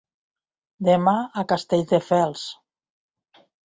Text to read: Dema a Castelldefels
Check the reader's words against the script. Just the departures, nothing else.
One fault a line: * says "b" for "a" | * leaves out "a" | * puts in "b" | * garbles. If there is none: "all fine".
all fine